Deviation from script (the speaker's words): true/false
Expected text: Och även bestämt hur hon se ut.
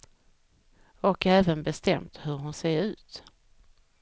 false